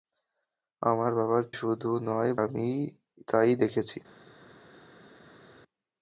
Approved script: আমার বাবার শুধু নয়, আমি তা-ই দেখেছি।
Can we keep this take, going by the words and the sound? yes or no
yes